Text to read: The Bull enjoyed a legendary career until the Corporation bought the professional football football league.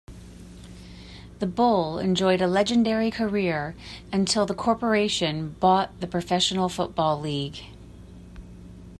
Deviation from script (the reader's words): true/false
true